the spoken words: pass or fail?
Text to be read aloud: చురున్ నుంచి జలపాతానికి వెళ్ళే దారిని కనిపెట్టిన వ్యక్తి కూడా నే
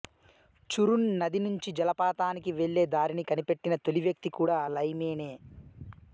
fail